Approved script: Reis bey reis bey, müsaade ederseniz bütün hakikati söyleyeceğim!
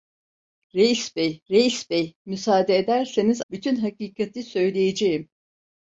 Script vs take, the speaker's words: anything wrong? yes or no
no